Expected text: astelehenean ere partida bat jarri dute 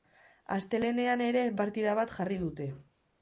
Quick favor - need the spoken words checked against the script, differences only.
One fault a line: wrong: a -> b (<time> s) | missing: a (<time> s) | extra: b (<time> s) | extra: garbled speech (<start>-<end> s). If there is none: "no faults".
no faults